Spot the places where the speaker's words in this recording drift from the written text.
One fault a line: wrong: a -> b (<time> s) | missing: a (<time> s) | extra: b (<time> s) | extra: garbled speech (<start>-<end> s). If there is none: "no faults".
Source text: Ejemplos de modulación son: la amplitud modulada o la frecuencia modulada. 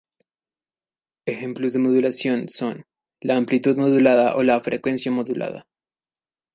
no faults